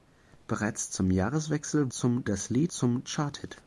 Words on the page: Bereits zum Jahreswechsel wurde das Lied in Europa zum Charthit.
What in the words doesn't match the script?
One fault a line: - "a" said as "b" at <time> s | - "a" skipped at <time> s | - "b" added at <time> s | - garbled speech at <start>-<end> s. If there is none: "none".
- "wurde" said as "zum" at 1.9 s
- "in Europa" skipped at 2.7 s